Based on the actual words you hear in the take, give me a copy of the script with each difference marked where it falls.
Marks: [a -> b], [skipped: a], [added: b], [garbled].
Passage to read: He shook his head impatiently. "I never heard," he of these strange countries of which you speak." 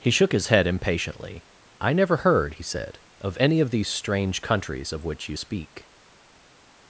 He shook his head impatiently. "I never heard," he [added: said of any] of these strange countries of which you speak."